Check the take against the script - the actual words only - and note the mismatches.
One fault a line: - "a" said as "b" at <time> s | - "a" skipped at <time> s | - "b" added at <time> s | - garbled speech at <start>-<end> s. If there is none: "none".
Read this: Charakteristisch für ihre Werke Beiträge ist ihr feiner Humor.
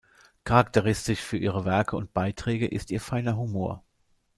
- "und" added at 2.0 s